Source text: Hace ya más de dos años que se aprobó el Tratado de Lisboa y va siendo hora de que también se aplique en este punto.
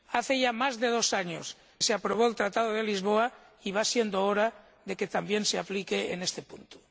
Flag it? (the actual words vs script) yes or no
yes